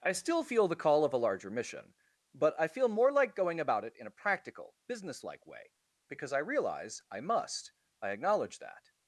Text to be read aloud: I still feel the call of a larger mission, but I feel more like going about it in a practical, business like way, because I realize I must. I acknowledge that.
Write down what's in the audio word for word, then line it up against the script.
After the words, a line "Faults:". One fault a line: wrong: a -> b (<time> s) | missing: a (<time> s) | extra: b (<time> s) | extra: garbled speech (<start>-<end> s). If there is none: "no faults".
I still feel the call of a larger mission, but I feel more like going about it in a practical, business like way, because I realize I must. I acknowledge that.
Faults:
no faults